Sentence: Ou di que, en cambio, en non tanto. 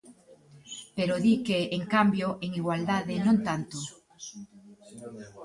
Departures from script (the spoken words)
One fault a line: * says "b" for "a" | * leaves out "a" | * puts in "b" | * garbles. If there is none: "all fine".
* says "Pero" for "Ou"
* puts in "igualdade"